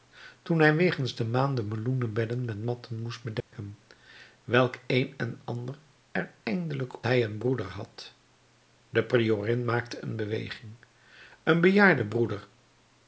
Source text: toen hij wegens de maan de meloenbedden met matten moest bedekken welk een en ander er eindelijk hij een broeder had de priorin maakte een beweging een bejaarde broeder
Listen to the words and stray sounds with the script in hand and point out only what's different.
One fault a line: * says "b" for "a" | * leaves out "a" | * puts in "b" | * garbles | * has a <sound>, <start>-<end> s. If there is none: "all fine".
* has a dropout, 3.4-3.5 s